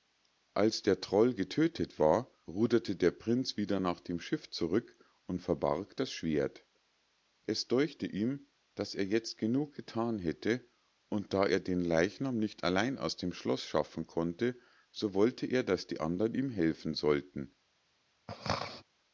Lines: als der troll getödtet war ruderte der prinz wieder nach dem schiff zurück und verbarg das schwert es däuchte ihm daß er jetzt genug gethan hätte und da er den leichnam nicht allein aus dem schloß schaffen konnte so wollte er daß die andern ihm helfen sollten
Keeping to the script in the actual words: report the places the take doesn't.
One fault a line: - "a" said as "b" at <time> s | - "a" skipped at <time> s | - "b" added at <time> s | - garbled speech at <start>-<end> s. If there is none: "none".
none